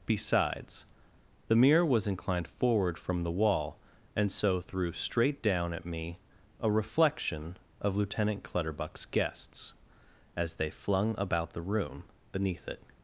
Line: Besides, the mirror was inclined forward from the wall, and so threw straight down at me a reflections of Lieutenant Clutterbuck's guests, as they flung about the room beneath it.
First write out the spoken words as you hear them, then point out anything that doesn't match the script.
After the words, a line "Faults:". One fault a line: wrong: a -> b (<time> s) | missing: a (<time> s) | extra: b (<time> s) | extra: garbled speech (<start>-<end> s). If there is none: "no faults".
Besides, the mirror was inclined forward from the wall, and so threw straight down at me a reflection of Lieutenant Clutterbuck's guests, as they flung about the room beneath it.
Faults:
wrong: reflections -> reflection (6.7 s)